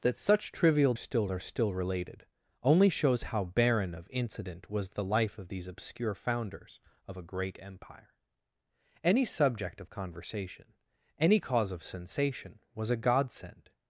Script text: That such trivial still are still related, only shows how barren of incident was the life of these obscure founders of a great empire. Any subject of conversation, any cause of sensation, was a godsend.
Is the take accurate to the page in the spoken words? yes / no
yes